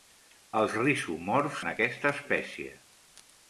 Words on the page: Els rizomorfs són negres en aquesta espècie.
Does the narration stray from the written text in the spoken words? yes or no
yes